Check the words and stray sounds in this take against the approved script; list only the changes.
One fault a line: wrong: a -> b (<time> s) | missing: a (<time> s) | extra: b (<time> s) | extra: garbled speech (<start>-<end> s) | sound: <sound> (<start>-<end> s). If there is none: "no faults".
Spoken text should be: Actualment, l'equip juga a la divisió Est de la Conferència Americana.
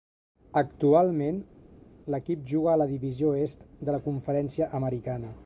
no faults